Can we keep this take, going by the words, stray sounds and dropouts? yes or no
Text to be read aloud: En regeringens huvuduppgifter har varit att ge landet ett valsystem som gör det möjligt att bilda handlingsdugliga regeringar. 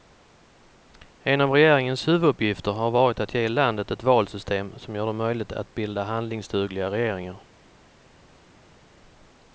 no